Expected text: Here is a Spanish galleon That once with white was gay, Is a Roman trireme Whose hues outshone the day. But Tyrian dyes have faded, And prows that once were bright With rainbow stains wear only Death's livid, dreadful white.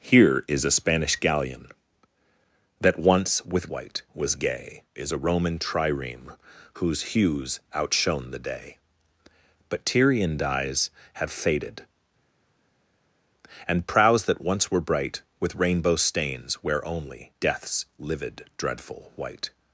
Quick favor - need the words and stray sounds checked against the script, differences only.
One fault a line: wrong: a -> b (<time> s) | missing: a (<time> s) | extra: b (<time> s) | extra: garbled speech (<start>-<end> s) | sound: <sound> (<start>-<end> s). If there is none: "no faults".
no faults